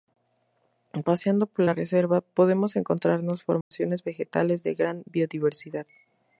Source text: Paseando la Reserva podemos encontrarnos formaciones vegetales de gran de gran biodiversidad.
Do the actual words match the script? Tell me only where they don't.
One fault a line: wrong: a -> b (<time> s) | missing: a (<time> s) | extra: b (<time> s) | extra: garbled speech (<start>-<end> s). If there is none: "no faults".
extra: por (1.4 s)
missing: de gran (5.1 s)